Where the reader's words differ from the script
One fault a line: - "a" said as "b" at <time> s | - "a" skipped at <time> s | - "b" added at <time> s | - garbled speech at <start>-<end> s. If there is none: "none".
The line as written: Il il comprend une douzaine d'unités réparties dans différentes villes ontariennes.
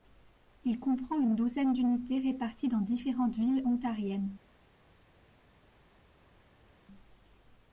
- "il" skipped at 0.8 s